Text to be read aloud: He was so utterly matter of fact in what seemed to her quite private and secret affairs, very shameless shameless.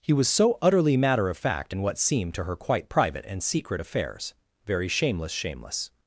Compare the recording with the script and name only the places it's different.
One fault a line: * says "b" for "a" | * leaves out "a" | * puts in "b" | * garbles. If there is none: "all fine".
all fine